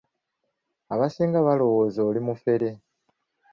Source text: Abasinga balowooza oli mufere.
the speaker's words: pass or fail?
pass